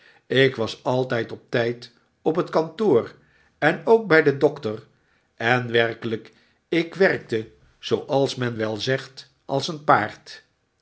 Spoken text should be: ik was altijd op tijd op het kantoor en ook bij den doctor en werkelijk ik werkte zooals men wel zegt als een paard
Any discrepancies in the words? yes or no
no